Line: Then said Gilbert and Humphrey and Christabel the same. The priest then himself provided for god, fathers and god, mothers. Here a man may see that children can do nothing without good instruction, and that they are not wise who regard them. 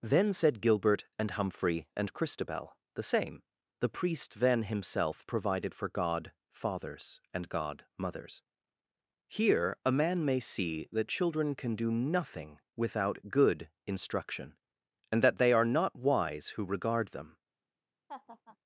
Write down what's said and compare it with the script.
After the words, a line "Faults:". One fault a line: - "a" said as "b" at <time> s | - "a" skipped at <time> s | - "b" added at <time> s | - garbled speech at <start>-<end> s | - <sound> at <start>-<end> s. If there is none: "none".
Then said Gilbert and Humphrey and Christabel the same. The priest then himself provided for god, fathers and god, mothers. Here a man may see that children can do nothing without good instruction, and that they are not wise who regard them.
Faults:
- laugh at 18.1-18.6 s